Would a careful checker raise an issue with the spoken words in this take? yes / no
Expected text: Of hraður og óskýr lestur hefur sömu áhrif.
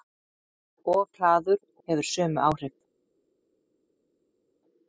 yes